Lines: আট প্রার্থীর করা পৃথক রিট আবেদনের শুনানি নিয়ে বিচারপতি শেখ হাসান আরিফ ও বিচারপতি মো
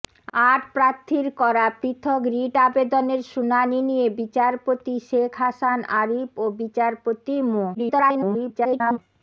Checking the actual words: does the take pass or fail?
fail